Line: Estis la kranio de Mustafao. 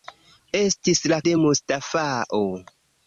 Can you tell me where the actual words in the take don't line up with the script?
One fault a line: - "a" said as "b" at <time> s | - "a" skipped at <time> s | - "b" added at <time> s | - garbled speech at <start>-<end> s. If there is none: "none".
- "kranio" skipped at 1.2 s